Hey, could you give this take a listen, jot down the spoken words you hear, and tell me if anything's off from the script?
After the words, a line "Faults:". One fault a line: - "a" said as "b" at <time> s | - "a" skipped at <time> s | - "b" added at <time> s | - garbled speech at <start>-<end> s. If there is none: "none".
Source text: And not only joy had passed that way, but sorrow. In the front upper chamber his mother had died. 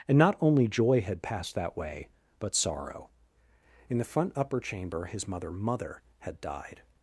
And not only joy had passed that way, but sorrow. In the front upper chamber his mother mother had died.
Faults:
- "mother" added at 5.5 s